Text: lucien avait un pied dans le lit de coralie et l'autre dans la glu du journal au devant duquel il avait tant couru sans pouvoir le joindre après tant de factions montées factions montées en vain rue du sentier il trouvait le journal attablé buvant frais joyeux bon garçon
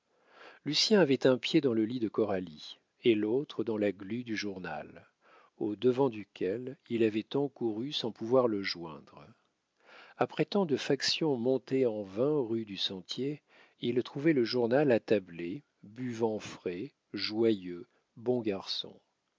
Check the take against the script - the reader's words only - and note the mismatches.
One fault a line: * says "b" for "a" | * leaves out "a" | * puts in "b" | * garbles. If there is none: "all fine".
* leaves out "factions montées"